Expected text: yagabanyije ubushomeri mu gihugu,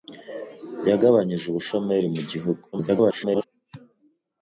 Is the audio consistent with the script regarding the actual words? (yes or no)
no